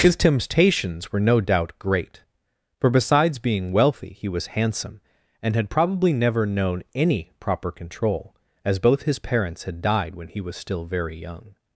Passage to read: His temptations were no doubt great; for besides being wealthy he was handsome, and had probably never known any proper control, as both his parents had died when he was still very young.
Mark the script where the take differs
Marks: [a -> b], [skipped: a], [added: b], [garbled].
His temptations were no doubt great; for besides being wealthy he was handsome, and had probably never known any proper control, as both his parents had died when he was still very young.